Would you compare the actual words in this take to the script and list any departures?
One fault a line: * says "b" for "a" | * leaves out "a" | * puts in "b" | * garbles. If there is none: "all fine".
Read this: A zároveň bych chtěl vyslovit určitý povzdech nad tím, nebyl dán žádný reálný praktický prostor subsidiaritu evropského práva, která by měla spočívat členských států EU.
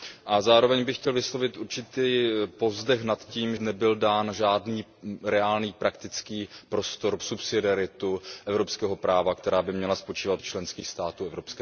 all fine